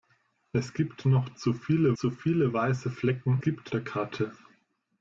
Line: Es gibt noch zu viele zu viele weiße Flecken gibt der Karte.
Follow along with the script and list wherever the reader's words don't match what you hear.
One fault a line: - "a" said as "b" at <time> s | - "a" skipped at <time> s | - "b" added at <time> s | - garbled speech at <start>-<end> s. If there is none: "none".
none